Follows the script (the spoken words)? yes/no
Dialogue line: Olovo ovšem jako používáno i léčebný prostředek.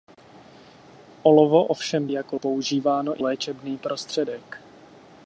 yes